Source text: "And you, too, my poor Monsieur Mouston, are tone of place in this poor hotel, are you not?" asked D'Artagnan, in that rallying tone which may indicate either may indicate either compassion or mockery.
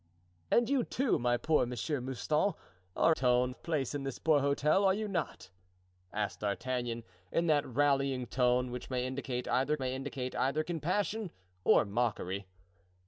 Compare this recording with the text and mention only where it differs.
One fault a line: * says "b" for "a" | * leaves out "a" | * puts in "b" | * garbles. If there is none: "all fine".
all fine